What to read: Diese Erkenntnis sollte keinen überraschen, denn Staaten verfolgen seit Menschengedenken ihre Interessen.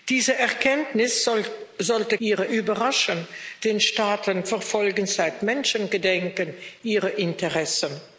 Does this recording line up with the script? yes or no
no